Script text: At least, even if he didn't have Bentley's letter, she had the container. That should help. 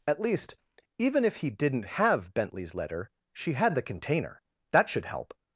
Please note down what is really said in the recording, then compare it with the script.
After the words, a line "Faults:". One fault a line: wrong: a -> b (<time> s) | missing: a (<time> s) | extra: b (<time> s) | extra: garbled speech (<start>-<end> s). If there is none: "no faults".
At least, even if he didn't have Bentley's letter, she had the container. That should help.
Faults:
no faults